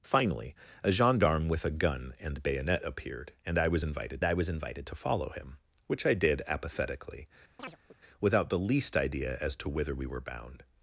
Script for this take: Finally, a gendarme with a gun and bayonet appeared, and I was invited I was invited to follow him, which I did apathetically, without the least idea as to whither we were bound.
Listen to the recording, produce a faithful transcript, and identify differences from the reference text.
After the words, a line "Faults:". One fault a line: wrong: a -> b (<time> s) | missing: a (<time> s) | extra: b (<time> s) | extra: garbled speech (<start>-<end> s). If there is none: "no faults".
Finally, a gendarme with a gun and bayonet appeared, and I was invited I was invited to follow him, which I did apathetically, without the least idea as to whither we were bound.
Faults:
no faults